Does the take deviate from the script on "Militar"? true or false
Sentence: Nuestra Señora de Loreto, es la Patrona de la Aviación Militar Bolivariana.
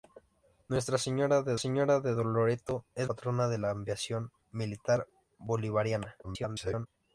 false